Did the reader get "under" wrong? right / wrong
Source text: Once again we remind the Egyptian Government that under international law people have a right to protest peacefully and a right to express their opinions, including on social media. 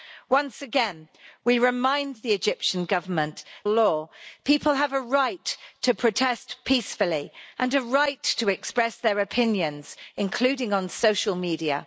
wrong